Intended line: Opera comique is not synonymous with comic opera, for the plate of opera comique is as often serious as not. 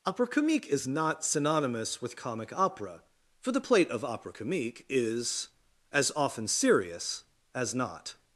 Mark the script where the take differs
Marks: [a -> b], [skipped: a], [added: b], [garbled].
Opera comique is not synonymous with comic opera, for the plate of opera comique is as often serious as not.